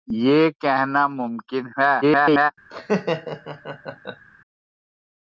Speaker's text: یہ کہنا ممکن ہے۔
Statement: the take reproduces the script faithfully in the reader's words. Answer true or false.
false